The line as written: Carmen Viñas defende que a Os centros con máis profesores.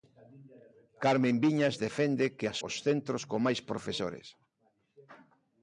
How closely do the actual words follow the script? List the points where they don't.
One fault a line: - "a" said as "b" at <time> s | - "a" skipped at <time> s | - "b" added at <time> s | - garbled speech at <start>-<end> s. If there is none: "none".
none